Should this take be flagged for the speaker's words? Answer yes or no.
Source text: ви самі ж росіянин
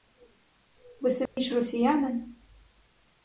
no